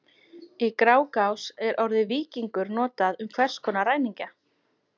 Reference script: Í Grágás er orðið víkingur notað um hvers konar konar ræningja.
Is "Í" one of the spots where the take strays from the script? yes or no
no